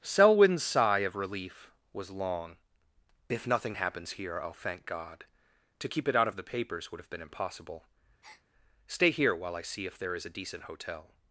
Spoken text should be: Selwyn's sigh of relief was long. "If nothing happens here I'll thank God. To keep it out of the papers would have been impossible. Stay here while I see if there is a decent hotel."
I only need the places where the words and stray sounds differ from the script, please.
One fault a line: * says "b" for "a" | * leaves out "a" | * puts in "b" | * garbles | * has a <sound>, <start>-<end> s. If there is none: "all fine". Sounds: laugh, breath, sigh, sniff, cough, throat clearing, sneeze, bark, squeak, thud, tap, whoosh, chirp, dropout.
* has a breath, 8.2-8.4 s